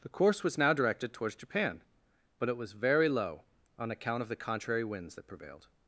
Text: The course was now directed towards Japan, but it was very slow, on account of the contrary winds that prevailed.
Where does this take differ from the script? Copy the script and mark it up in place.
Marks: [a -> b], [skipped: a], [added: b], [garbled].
The course was now directed towards Japan, but it was very [slow, -> low] on account of the contrary winds that prevailed.